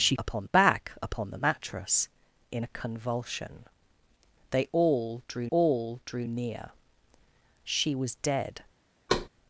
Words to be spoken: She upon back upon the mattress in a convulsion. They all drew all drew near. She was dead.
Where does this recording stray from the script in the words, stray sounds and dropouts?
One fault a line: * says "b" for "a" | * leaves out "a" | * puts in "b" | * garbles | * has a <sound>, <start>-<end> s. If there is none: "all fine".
* has a thud, 9.1-9.3 s